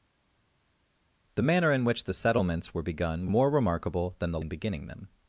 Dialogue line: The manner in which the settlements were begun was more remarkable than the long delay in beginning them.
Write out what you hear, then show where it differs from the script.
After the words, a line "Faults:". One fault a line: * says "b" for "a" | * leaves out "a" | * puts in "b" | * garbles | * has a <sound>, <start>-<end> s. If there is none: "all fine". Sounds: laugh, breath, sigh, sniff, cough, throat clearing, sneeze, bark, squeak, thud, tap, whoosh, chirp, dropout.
The manner in which the settlements were begun more remarkable than the in beginning them.
Faults:
* leaves out "was"
* leaves out "long delay"